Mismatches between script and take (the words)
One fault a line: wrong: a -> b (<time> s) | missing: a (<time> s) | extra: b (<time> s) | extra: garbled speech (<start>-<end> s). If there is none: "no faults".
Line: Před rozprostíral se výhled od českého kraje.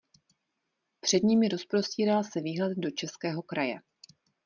extra: nimi (1.2 s)
wrong: od -> do (2.8 s)